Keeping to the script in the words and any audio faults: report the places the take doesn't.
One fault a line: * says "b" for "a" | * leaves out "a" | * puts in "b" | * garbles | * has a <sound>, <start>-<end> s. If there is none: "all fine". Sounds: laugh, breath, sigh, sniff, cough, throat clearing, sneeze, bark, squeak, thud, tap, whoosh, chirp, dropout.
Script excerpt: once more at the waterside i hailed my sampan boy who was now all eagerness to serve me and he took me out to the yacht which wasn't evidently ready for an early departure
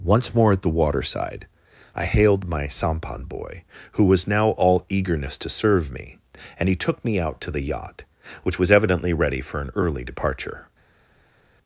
* says "was" for "wasn't"